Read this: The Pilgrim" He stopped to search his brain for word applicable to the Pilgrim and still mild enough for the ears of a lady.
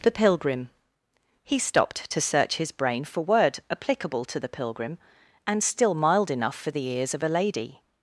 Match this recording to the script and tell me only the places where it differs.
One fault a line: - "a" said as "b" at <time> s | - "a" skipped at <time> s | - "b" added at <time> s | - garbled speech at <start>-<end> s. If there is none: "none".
none